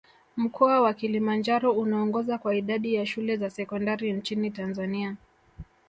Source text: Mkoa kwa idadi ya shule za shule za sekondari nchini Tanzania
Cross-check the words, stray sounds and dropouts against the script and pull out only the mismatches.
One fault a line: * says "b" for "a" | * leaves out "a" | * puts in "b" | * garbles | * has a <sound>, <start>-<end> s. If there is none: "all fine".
* puts in "wa Kilimanjaro unaongoza"
* leaves out "shule za"